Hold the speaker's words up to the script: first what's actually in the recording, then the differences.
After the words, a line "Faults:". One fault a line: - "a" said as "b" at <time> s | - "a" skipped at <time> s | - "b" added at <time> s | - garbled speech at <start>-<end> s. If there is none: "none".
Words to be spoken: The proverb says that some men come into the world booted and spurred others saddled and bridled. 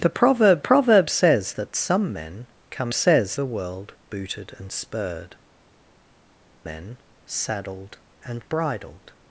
The proverb proverb says that some men come says the world booted and spurred men saddled and bridled.
Faults:
- "proverb" added at 0.6 s
- "into" said as "says" at 2.9 s
- "others" said as "men" at 6.6 s